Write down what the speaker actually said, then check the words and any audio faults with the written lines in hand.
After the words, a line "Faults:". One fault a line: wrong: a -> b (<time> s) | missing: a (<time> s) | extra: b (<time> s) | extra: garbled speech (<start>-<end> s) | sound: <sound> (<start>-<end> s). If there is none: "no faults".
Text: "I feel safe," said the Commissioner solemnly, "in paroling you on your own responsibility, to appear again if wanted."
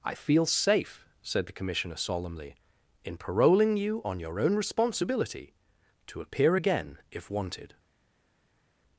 "I feel safe," said the Commissioner solemnly, "in paroling you on your own responsibility, to appear again if wanted."
Faults:
no faults